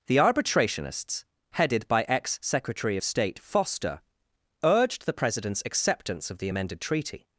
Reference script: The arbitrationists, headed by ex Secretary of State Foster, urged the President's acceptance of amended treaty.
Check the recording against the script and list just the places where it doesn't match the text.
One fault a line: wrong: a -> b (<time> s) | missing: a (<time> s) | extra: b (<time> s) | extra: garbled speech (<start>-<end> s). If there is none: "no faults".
extra: the (6.4 s)